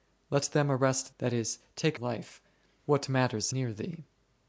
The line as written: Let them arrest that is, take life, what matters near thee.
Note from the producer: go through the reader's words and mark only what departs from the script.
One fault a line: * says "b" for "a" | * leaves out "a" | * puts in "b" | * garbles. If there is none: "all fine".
all fine